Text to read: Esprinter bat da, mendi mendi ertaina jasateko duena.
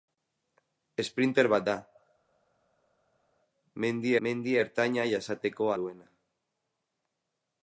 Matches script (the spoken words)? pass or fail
pass